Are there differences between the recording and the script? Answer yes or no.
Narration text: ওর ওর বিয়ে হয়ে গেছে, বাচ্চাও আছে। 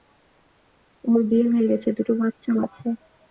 yes